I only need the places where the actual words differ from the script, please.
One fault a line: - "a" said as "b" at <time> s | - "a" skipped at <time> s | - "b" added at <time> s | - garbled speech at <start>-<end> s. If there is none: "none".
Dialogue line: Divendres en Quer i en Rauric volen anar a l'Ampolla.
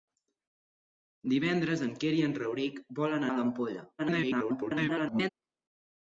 - "anar" skipped at 3.3 s
- garbled speech at 4.0-5.3 s